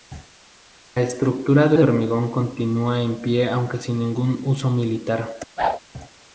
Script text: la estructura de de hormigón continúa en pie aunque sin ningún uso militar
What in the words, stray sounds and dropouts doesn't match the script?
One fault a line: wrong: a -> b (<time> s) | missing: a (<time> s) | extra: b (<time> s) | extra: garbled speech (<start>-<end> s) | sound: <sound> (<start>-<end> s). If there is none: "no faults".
sound: whoosh (5.6-5.8 s)